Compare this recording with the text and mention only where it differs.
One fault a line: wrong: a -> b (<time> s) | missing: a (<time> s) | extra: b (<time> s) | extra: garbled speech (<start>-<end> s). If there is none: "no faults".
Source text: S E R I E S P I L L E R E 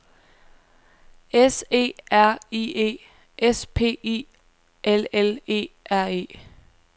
no faults